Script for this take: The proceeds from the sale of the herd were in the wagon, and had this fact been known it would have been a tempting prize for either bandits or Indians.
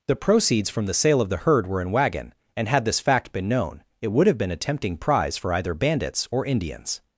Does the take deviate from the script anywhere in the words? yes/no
yes